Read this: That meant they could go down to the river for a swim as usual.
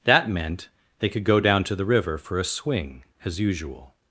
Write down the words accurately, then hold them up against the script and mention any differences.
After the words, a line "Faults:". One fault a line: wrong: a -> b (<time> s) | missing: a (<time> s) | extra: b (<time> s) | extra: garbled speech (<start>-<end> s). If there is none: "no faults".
That meant they could go down to the river for a swing as usual.
Faults:
wrong: swim -> swing (2.4 s)